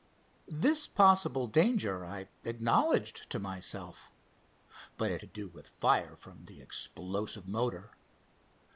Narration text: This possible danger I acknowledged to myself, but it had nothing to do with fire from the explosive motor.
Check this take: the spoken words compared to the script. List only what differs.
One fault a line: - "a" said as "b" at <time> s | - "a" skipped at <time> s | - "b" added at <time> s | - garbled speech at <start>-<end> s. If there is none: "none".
- "had nothing" skipped at 5.2 s